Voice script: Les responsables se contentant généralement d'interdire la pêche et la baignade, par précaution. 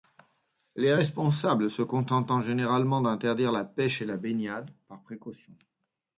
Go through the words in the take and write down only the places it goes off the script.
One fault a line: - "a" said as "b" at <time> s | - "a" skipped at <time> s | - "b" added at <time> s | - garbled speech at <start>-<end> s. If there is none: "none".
none